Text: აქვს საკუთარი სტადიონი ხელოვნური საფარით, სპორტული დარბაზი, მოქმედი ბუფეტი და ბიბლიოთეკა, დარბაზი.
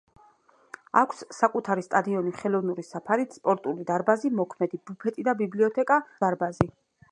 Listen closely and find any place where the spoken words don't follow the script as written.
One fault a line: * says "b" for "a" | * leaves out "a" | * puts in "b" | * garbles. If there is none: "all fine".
all fine